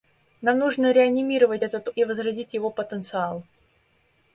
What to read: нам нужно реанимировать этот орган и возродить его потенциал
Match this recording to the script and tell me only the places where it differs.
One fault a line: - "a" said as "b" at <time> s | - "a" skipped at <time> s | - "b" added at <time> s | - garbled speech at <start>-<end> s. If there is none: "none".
- "орган" skipped at 1.9 s